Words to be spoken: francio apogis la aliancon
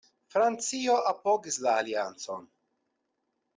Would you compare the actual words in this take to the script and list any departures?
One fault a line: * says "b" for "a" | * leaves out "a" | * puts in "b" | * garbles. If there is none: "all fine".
all fine